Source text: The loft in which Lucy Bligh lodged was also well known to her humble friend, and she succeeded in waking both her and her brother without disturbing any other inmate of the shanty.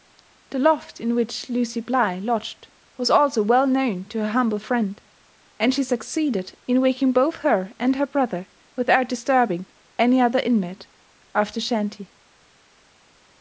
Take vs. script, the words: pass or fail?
pass